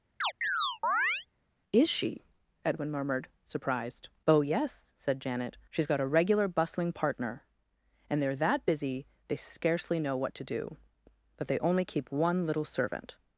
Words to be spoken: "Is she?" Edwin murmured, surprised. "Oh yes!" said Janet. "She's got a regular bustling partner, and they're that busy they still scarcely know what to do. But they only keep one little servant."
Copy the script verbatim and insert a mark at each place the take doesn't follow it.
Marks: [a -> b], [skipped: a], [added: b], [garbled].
"Is she?" Edwin murmured, surprised. "Oh yes!" said Janet. "She's got a regular bustling partner, and they're that busy they [skipped: still] scarcely know what to do. But they only keep one little servant."